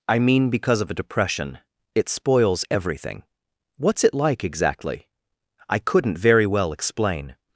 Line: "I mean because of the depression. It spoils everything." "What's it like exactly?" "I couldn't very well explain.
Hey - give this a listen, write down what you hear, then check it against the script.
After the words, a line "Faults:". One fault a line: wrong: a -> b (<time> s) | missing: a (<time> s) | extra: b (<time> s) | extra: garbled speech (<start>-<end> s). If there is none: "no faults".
"I mean because of a depression. It spoils everything." "What's it like exactly?" "I couldn't very well explain.
Faults:
wrong: the -> a (0.9 s)